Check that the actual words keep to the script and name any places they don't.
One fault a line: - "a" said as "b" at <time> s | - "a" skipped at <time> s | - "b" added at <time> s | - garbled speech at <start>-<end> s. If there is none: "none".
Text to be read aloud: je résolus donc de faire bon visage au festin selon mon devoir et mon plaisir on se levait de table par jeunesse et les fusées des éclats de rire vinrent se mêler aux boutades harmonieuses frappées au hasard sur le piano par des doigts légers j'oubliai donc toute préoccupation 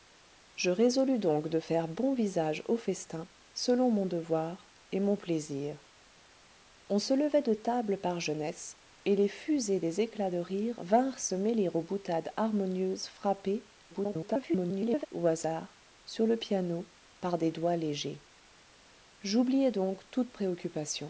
- garbled speech at 13.9-15.1 s